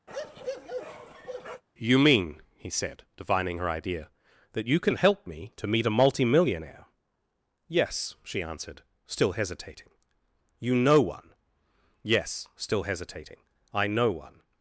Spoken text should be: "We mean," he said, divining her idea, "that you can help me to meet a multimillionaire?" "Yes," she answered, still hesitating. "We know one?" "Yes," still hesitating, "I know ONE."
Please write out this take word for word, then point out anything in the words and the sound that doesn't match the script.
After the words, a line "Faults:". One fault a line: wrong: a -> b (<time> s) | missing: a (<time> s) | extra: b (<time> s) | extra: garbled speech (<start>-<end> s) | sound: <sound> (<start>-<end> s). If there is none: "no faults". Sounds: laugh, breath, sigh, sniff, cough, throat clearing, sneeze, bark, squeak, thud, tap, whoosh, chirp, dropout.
"You mean," he said, divining her idea, "that you can help me to meet a multimillionaire?" "Yes," she answered, still hesitating. "You know one?" "Yes," still hesitating, "I know ONE."
Faults:
sound: bark (0.1-1.6 s)
wrong: We -> You (1.8 s)
wrong: We -> You (10.6 s)